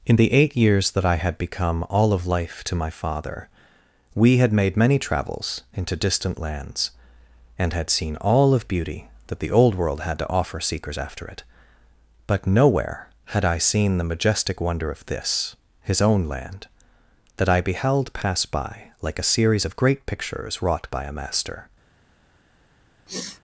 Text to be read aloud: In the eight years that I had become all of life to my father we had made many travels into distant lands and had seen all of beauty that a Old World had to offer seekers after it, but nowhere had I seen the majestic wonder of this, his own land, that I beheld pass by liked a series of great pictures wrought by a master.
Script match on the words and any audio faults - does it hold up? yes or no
no